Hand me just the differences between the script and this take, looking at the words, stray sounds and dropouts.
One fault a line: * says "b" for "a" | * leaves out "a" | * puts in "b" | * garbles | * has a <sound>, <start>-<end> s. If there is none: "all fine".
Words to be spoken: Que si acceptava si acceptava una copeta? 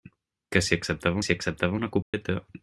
* has a dropout, 2.0-2.1 s